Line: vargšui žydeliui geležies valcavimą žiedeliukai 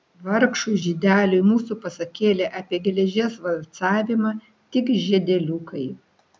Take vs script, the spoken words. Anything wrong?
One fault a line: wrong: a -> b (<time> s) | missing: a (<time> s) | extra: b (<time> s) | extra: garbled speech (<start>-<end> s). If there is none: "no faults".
extra: mūsų pasakėlė apie (1.4 s)
extra: tik (4.8 s)